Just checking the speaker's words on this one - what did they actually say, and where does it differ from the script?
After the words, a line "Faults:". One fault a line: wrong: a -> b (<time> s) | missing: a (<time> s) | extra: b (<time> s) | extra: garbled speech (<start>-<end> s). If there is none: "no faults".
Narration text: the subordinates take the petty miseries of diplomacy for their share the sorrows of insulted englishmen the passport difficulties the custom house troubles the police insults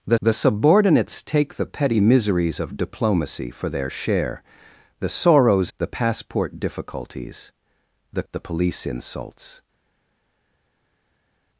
the the subordinates take the petty miseries of diplomacy for their share the sorrows the passport difficulties the the police insults
Faults:
extra: the (0.2 s)
missing: of insulted englishmen (5.7 s)
missing: custom house troubles (8.2 s)